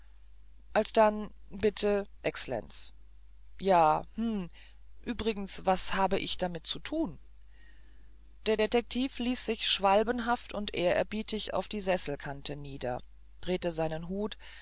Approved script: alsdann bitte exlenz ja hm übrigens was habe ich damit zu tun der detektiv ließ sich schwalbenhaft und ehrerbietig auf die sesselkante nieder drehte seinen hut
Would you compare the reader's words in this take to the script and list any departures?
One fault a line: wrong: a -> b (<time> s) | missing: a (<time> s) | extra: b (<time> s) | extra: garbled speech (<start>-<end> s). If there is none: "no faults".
no faults